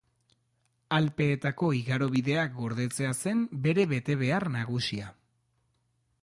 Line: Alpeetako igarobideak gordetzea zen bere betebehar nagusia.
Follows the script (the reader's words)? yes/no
yes